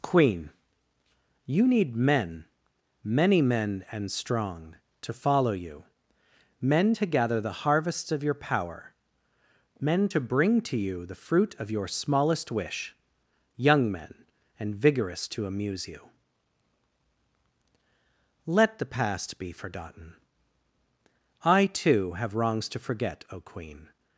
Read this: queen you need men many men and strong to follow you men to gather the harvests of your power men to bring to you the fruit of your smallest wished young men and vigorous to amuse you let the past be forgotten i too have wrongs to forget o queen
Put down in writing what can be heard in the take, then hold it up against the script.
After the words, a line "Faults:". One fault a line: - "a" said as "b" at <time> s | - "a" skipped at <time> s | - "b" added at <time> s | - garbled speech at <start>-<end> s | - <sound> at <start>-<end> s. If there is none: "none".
queen you need men many men and strong to follow you men to gather the harvests of your power men to bring to you the fruit of your smallest wish young men and vigorous to amuse you let the past be forgotten i too have wrongs to forget o queen
Faults:
- "wished" said as "wish" at 12.5 s